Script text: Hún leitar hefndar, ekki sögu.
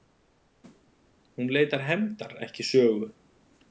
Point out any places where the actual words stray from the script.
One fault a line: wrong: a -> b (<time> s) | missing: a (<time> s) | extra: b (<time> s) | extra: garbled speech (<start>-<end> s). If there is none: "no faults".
no faults